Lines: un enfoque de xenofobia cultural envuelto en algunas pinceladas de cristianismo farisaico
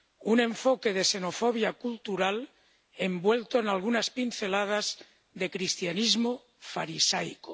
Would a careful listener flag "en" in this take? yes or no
no